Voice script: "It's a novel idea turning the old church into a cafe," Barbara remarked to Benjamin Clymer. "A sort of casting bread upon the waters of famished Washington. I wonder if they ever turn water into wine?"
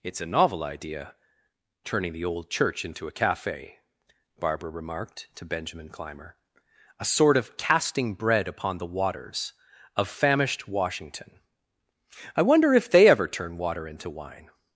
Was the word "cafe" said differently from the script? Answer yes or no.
no